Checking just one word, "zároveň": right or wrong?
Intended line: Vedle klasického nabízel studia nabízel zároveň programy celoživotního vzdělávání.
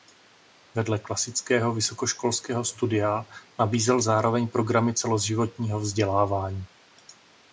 right